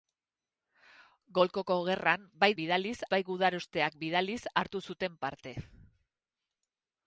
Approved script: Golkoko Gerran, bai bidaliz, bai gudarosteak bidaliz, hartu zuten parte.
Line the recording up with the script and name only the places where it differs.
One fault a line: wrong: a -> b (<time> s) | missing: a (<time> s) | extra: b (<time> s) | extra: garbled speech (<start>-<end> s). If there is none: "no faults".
no faults